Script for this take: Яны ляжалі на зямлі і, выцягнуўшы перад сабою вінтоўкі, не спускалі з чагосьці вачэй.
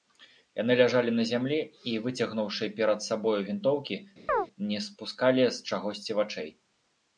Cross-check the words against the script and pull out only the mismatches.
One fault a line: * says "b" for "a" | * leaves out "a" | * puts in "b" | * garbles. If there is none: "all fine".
all fine